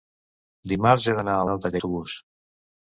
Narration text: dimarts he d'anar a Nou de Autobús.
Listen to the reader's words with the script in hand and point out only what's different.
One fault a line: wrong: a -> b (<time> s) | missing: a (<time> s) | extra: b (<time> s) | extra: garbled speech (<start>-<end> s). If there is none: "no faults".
no faults